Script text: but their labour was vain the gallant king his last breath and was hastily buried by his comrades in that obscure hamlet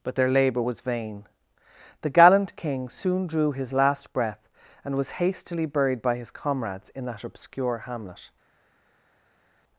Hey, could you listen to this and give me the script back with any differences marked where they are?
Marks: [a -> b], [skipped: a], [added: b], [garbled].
but their labour was vain the gallant king [added: soon drew] his last breath and was hastily buried by his comrades in that obscure hamlet